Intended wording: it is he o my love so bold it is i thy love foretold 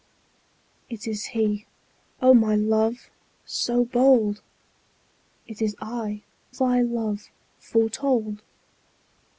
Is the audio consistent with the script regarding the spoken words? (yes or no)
yes